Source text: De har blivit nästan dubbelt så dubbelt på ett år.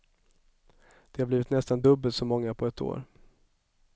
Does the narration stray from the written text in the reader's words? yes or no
yes